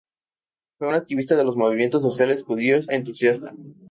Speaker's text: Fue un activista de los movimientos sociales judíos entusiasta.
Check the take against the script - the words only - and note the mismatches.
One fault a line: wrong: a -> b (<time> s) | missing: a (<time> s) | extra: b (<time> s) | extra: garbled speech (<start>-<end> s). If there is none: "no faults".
no faults